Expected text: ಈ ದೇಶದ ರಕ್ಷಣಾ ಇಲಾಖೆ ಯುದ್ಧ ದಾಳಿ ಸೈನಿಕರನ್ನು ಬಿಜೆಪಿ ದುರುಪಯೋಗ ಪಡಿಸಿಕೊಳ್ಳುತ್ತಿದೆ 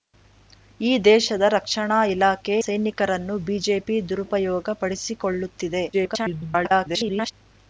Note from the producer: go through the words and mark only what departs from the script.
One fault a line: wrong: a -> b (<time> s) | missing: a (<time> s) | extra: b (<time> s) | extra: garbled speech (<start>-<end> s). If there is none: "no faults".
missing: ಯುದ್ಧ ದಾಳಿ (2.5 s)
extra: garbled speech (5.9-7.3 s)